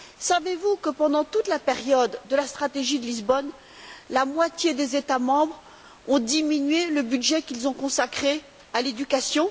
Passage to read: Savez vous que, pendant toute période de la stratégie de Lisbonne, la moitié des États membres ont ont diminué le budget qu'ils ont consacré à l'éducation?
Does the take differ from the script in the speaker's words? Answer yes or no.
yes